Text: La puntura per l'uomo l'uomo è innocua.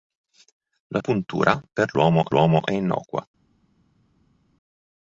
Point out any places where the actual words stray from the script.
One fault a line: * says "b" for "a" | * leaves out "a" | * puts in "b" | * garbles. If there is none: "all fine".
all fine